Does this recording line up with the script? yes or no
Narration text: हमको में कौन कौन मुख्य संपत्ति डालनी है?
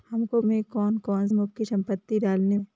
yes